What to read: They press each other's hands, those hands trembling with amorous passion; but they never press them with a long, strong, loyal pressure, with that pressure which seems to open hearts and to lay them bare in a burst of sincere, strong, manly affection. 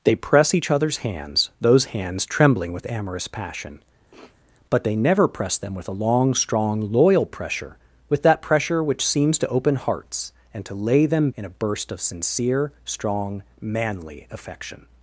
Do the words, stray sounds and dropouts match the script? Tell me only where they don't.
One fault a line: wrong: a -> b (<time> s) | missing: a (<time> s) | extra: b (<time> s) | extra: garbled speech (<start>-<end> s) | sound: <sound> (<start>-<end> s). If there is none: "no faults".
sound: sniff (4.1-4.4 s)
missing: bare (11.3 s)